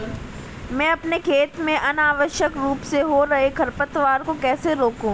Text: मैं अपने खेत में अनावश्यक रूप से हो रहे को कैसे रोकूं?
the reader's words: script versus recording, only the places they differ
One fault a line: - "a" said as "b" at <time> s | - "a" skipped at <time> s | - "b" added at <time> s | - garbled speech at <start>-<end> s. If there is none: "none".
- "खरपतवार" added at 3.5 s